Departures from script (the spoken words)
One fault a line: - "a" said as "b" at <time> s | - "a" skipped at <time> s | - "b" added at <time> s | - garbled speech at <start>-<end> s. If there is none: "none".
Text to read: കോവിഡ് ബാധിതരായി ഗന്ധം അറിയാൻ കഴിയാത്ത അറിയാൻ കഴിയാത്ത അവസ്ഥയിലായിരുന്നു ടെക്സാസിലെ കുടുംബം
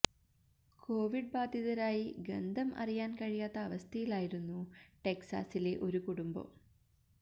- "അറിയാൻ കഴിയാത്ത" skipped at 3.6 s
- "ഒരു" added at 5.8 s